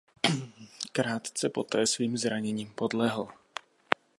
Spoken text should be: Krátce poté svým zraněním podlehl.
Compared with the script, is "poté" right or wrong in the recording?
right